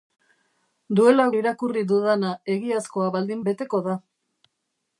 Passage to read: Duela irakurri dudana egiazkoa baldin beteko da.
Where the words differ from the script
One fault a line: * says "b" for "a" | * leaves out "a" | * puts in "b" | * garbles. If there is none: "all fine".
all fine